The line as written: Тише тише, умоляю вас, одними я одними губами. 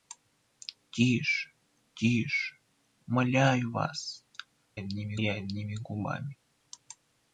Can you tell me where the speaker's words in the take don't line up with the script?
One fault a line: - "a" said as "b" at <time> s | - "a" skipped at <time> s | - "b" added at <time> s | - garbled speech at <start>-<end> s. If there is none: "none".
none